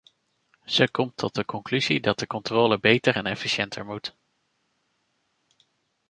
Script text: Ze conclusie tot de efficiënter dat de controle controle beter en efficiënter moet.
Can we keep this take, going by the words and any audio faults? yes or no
no